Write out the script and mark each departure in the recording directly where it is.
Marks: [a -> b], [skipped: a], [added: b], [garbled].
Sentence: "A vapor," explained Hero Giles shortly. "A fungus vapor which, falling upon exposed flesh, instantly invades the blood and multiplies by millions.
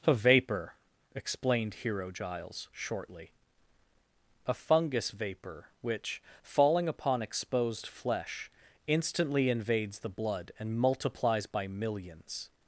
"A vapor," explained Hero Giles shortly. "A fungus vapor which, falling upon exposed flesh, instantly invades the blood and multiplies by millions.